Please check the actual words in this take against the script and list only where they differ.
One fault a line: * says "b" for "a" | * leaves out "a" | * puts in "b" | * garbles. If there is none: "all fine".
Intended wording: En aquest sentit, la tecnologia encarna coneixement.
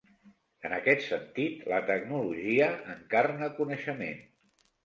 all fine